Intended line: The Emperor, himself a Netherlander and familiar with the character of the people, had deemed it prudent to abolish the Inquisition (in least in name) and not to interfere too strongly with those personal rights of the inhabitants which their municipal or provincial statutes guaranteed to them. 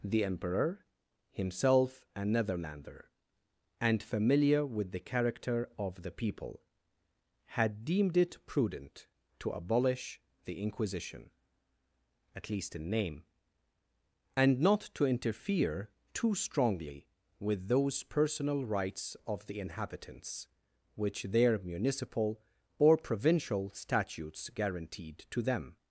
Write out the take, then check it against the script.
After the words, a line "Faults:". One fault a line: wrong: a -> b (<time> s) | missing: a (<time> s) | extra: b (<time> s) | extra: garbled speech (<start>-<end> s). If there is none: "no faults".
The Emperor, himself a Netherlander and familiar with the character of the people, had deemed it prudent to abolish the Inquisition (at least in name) and not to interfere too strongly with those personal rights of the inhabitants which their municipal or provincial statutes guaranteed to them.
Faults:
wrong: in -> at (12.3 s)